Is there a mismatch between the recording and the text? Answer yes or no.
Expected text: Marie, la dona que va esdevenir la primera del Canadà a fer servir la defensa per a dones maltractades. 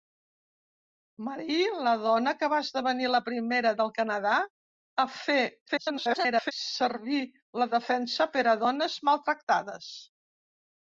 yes